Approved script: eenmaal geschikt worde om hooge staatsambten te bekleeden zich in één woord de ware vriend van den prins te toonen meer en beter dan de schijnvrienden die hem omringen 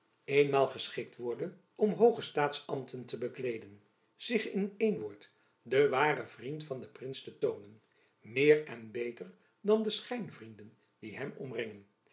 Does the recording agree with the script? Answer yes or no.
yes